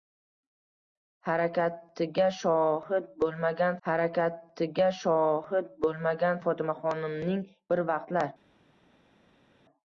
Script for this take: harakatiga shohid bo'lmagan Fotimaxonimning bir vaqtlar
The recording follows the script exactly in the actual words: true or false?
false